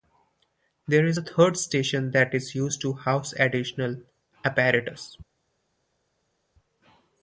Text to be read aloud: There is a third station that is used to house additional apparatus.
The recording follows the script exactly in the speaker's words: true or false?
true